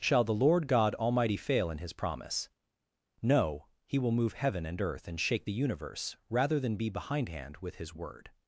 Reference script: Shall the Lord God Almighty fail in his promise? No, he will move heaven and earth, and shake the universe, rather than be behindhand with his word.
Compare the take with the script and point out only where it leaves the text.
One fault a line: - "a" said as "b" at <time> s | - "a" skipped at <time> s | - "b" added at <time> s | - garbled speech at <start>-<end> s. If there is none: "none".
none